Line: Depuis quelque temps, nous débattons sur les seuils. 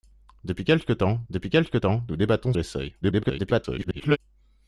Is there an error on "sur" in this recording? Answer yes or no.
yes